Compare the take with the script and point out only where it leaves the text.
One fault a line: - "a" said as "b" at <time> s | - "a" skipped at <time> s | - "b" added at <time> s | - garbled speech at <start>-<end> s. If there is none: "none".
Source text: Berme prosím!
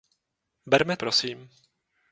none